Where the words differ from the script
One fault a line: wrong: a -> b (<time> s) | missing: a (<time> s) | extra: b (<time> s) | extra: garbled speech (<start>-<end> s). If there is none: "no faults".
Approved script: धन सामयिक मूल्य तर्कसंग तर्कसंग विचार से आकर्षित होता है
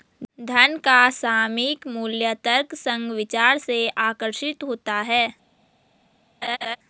extra: का (0.8 s)
missing: तर्कसंग (3.1 s)